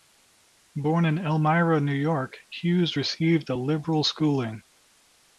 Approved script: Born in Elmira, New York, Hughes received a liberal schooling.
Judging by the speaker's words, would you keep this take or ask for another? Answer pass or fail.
pass